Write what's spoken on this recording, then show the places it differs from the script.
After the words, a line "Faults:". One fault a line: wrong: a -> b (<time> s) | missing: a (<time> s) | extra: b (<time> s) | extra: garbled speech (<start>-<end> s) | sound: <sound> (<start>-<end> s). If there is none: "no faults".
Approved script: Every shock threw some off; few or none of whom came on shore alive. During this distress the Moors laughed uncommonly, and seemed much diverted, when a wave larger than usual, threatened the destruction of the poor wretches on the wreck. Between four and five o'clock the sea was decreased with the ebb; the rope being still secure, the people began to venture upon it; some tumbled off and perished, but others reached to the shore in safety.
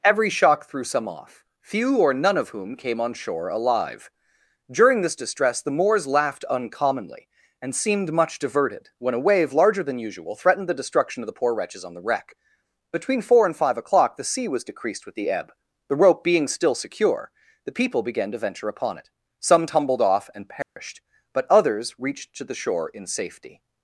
Every shock threw some off; few or none of whom came on shore alive. During this distress the Moors laughed uncommonly, and seemed much diverted, when a wave larger than usual, threatened the destruction of the poor wretches on the wreck. Between four and five o'clock the sea was decreased with the ebb; the rope being still secure, the people began to venture upon it; some tumbled off and perished, but others reached to the shore in safety.
Faults:
sound: dropout (20.6-20.8 s)